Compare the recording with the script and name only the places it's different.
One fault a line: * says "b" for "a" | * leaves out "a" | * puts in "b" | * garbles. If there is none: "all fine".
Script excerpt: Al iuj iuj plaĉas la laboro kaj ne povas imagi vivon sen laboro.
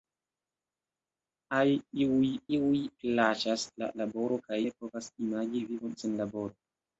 all fine